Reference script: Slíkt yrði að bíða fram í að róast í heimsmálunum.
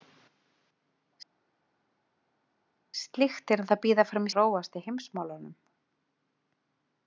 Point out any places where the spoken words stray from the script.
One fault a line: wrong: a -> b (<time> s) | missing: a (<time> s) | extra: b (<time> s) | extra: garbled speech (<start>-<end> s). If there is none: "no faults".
no faults